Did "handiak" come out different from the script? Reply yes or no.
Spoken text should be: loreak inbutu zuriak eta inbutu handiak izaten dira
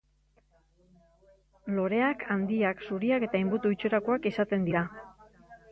yes